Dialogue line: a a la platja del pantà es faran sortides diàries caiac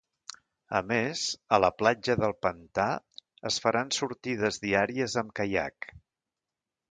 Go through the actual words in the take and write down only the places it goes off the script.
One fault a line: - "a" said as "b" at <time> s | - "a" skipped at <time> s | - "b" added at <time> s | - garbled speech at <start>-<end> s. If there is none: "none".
- "més" added at 0.9 s
- "amb" added at 5.2 s